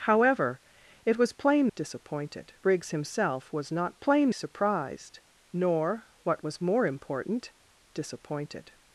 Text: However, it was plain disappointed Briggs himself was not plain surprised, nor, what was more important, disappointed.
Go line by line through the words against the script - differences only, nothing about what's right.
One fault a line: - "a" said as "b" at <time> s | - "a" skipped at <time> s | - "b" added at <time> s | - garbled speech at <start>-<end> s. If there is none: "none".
none